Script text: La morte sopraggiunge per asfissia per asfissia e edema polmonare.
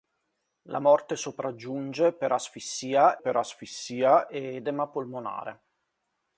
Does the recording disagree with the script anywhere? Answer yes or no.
no